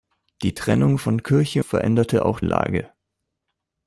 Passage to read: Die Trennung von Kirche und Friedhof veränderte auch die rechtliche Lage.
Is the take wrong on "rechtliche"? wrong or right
wrong